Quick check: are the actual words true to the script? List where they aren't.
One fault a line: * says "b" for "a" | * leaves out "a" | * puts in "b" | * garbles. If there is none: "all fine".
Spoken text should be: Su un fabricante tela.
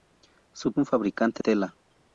all fine